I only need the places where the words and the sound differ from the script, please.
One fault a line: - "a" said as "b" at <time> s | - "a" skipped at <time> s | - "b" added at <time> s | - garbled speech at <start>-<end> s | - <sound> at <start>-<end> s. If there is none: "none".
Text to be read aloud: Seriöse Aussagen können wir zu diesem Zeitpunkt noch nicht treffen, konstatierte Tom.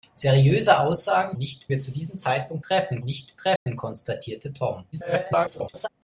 - "können" said as "nicht" at 1.4 s
- "noch" said as "treffen" at 2.6 s
- dropout at 3.6-3.7 s
- garbled speech at 4.9-5.9 s